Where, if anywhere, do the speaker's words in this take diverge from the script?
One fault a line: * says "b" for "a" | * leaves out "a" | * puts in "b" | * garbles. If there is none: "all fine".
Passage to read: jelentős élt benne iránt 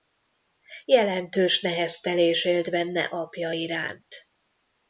* puts in "neheztelés"
* puts in "apja"